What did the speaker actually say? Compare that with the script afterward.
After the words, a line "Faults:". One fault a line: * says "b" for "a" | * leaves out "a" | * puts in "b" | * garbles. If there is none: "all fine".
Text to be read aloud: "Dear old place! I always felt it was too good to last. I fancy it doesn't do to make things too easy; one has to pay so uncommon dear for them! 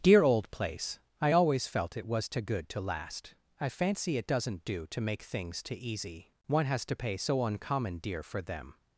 "Dear old place! I always felt it was too good to last. I fancy it doesn't do to make things too easy; one has to pay so uncommon dear for them!
Faults:
all fine